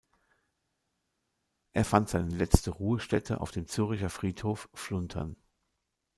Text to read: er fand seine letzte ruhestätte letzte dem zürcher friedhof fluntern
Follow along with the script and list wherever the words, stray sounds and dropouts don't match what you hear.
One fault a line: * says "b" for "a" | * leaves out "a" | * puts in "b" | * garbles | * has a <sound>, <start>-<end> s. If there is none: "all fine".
* says "auf" for "letzte"